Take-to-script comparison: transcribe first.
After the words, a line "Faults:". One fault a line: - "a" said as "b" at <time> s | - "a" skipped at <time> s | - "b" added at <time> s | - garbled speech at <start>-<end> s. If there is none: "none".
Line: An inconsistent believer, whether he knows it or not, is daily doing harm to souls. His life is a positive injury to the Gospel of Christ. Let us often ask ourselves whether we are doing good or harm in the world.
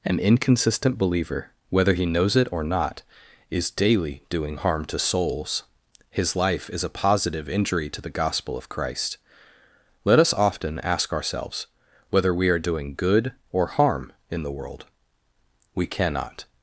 An inconsistent believer, whether he knows it or not, is daily doing harm to souls. His life is a positive injury to the Gospel of Christ. Let us often ask ourselves whether we are doing good or harm in the world. We cannot
Faults:
- "We cannot" added at 15.7 s